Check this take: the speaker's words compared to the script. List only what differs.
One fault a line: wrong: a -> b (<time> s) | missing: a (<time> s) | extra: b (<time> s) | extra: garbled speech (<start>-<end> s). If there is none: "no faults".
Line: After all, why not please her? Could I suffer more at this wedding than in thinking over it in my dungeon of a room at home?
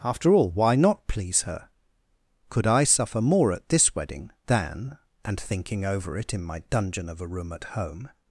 wrong: in -> and (5.2 s)